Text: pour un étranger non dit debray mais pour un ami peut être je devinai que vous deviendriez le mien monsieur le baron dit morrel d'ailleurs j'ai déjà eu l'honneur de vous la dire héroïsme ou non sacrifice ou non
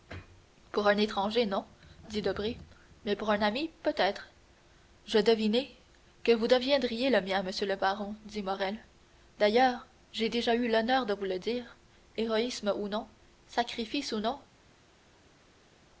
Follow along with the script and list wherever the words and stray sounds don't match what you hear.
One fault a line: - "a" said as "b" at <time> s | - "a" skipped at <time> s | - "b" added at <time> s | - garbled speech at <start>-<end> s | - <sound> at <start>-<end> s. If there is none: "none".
- "la" said as "le" at 11.2 s